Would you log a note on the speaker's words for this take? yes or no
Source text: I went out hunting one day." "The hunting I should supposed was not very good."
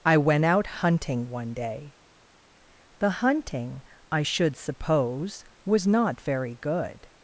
yes